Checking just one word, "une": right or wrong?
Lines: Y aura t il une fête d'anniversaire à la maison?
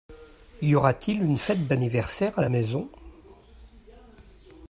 right